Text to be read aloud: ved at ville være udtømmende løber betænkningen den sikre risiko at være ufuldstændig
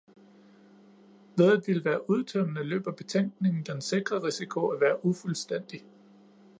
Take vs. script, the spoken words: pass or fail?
pass